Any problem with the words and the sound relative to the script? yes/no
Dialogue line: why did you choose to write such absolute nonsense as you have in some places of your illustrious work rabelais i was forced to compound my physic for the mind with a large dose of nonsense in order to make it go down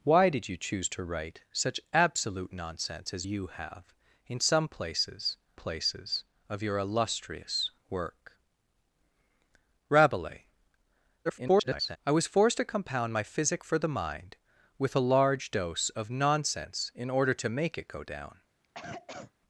yes